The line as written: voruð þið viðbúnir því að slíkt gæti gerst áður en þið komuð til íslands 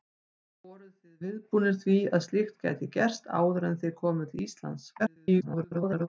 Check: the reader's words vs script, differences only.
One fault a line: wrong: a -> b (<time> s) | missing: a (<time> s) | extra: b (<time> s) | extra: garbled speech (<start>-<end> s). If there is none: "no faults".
extra: garbled speech (5.0-6.1 s)